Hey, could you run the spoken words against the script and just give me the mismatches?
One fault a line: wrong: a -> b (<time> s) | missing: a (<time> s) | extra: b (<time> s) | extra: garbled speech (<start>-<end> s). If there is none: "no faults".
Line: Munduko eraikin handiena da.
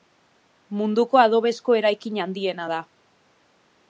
extra: adobezko (1.2 s)